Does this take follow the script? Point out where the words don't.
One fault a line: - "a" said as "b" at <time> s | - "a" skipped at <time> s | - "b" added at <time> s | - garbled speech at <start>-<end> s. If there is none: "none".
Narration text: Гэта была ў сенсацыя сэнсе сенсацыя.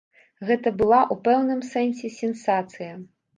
- "сенсацыя" said as "пэўным" at 1.2 s